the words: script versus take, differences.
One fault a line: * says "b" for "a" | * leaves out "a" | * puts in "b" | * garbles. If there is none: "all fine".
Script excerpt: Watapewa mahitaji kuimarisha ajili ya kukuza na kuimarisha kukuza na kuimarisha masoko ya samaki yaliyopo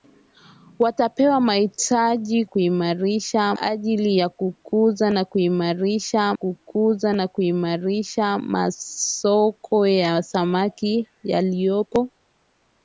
all fine